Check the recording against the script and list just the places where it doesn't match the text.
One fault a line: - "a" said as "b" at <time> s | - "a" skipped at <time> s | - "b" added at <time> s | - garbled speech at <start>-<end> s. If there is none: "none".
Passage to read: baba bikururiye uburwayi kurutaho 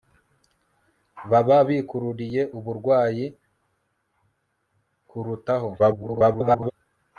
- garbled speech at 5.8-6.7 s